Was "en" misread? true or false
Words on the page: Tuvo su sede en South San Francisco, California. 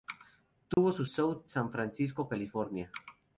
true